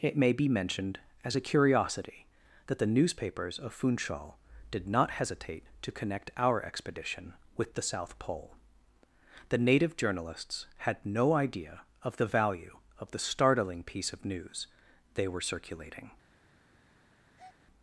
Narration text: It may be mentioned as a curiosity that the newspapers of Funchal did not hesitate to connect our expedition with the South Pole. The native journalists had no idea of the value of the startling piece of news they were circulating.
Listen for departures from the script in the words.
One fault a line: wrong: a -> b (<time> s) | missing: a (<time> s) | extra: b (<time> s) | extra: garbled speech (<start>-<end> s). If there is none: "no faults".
no faults